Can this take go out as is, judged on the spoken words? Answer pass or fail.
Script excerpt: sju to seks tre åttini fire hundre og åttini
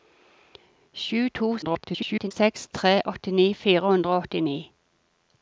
fail